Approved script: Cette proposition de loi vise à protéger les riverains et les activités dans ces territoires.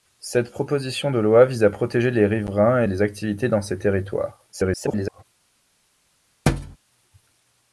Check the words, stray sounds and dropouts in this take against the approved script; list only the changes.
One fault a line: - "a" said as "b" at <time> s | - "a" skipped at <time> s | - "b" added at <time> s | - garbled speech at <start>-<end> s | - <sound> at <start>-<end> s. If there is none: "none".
- garbled speech at 4.5-5.2 s
- thud at 6.5-6.8 s